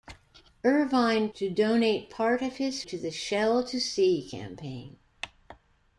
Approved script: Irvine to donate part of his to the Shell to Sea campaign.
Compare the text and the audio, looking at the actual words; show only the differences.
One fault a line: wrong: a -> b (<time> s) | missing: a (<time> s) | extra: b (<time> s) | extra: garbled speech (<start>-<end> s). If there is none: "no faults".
no faults